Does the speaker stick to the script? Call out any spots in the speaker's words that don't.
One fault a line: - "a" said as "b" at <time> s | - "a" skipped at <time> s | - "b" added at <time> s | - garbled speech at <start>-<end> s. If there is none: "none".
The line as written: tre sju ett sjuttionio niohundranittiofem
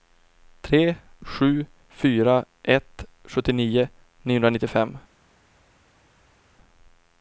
- "fyra" added at 1.9 s